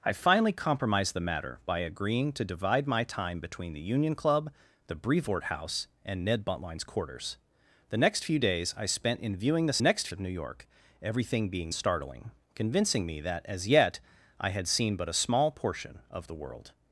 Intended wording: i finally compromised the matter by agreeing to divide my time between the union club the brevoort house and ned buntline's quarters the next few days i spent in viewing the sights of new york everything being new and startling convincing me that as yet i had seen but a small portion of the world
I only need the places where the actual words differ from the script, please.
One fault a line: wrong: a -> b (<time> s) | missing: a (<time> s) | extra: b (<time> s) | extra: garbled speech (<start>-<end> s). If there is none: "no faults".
wrong: sights -> next (9.8 s)
missing: new and (11.7 s)